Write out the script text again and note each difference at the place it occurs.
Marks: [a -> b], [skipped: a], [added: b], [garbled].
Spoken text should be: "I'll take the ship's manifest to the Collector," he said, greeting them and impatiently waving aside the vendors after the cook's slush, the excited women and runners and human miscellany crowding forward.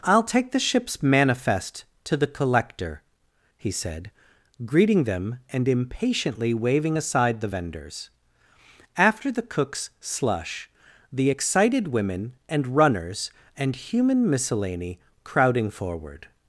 "I'll take the ship's manifest to the Collector," he said, greeting them and impatiently waving aside the vendors after the cook's slush, the excited women and runners and human miscellany crowding forward.